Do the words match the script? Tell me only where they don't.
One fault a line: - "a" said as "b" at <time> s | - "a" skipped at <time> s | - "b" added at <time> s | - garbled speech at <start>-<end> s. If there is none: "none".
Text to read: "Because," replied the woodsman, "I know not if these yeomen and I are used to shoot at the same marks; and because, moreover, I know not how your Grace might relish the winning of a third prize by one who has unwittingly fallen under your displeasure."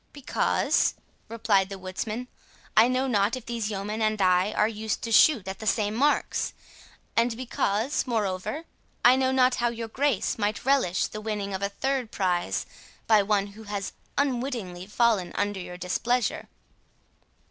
none